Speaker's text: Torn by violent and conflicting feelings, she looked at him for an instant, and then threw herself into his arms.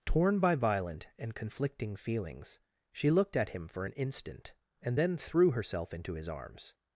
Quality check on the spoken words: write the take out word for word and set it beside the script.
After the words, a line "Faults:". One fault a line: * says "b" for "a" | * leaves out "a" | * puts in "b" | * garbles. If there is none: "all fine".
Torn by violent and conflicting feelings, she looked at him for an instant, and then threw herself into his arms.
Faults:
all fine